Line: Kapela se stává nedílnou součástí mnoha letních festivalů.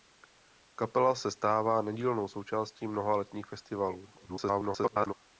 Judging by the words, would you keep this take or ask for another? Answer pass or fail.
fail